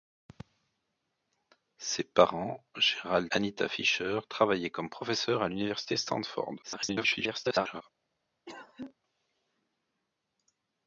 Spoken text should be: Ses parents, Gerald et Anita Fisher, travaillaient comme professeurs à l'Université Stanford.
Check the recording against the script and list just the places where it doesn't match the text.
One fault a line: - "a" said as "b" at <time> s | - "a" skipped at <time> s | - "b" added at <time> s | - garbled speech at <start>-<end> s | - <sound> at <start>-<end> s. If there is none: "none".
- "et" skipped at 3.3 s
- garbled speech at 6.6-7.8 s
- cough at 8.5-8.9 s